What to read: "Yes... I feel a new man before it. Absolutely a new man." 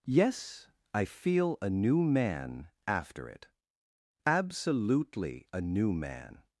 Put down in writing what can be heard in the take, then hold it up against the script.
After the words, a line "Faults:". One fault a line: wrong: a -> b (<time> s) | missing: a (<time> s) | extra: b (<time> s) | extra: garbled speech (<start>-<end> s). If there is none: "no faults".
"Yes... I feel a new man after it. Absolutely a new man."
Faults:
wrong: before -> after (2.9 s)